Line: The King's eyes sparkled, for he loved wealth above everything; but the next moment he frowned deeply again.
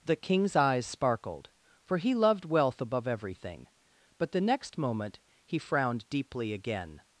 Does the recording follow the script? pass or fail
pass